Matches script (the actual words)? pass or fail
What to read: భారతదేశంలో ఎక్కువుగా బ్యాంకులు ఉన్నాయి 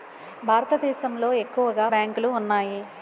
pass